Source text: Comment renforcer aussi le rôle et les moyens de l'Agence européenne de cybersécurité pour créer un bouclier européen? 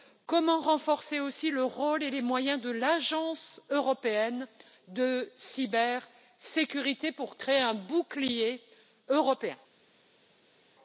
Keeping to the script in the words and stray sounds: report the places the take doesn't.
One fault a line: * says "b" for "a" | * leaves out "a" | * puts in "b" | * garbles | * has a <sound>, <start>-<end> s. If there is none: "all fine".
all fine